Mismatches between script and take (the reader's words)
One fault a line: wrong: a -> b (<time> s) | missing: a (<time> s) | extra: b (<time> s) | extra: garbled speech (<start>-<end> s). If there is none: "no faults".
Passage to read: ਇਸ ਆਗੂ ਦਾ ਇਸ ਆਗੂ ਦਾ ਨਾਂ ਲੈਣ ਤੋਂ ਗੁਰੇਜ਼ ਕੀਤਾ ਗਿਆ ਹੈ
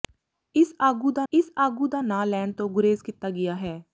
no faults